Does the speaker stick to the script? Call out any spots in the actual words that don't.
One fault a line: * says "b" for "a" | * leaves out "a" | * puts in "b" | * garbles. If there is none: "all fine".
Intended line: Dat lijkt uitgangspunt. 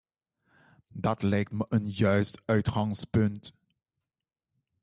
* puts in "me een juist"